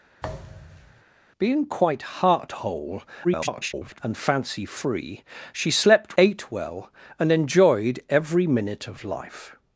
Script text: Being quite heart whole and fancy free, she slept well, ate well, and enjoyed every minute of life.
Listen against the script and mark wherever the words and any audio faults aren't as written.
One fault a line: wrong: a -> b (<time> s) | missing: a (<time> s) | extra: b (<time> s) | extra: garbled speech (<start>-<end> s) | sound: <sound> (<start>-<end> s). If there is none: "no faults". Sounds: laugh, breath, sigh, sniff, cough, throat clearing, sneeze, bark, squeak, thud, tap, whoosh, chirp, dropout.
sound: thud (0.2-1.0 s)
extra: garbled speech (3.2-4.0 s)
missing: well (6.2 s)